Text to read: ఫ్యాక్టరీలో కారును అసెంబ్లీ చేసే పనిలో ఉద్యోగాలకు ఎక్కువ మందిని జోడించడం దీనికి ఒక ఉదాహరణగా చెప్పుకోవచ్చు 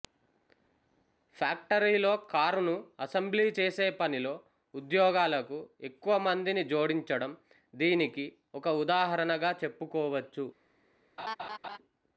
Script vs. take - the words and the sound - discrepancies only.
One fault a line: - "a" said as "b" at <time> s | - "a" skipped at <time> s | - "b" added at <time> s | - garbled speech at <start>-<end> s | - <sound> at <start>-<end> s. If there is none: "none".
- laugh at 11.2-11.8 s